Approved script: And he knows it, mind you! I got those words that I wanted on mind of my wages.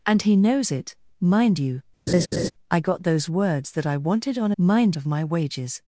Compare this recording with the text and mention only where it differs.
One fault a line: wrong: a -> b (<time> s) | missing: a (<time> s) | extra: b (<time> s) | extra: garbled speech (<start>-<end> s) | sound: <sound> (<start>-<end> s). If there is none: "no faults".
sound: laugh (2.1-2.5 s)